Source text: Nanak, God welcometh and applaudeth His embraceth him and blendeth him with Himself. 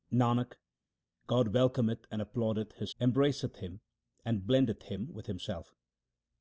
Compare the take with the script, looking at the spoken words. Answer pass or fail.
pass